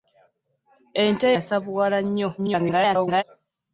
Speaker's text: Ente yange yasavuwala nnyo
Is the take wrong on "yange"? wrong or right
wrong